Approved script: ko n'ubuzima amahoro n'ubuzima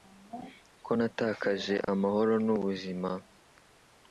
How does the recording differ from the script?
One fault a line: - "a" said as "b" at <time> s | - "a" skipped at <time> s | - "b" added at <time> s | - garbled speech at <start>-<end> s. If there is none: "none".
- "n'ubuzima" said as "natakaje" at 1.0 s